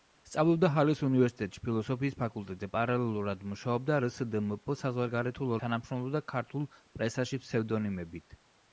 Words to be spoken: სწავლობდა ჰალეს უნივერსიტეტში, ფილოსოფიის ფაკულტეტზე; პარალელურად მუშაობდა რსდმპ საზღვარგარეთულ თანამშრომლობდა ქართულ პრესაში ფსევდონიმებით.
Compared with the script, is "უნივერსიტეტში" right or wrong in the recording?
right